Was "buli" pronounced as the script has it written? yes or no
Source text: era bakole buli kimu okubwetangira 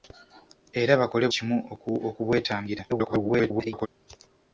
no